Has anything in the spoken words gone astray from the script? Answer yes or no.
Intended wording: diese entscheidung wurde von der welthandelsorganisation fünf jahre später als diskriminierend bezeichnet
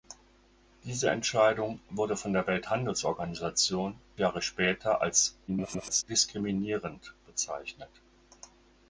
yes